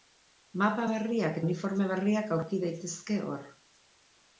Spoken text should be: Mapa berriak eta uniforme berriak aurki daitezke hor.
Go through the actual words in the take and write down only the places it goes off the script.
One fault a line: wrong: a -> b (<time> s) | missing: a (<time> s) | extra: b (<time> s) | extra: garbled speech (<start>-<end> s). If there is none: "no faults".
missing: eta (1.4 s)